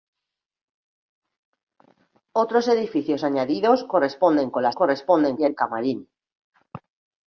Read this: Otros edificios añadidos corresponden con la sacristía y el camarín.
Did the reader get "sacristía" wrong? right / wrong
wrong